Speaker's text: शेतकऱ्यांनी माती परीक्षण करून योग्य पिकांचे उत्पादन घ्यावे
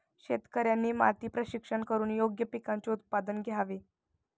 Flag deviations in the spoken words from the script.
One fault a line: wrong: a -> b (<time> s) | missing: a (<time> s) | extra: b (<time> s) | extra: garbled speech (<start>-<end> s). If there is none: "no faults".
no faults